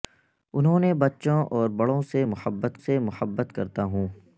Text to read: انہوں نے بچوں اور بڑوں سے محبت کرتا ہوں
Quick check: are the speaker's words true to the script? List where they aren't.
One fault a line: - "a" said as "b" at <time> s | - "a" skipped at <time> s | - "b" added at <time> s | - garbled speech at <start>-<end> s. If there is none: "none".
- "سے محبت" added at 2.8 s